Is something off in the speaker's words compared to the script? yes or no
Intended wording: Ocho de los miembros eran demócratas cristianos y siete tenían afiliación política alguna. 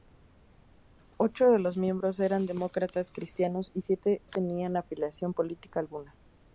no